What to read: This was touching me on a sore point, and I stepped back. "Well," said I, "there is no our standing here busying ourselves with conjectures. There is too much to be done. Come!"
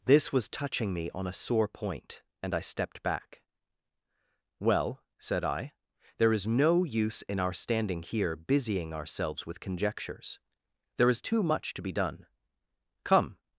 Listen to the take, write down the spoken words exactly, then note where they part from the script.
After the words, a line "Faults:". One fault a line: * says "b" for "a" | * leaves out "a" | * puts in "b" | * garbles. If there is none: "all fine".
This was touching me on a sore point, and I stepped back. "Well," said I, "there is no use in our standing here busying ourselves with conjectures. There is too much to be done. Come!"
Faults:
* puts in "use in"